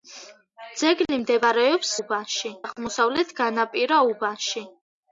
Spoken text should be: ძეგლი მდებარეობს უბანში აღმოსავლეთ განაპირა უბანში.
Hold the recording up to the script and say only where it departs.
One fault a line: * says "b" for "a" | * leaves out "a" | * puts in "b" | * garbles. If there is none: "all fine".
all fine